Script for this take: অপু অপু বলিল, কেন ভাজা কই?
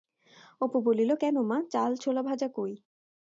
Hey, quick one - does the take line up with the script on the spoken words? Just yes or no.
no